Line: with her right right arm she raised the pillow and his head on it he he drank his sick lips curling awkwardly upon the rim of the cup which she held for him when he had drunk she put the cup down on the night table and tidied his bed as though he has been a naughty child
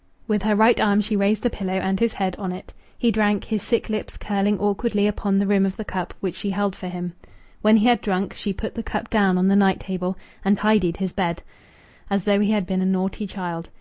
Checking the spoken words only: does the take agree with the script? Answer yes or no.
no